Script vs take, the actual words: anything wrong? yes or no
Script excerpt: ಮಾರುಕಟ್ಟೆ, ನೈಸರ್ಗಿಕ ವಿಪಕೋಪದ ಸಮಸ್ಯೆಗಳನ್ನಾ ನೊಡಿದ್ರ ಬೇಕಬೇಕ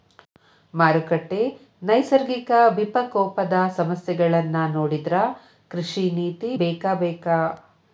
yes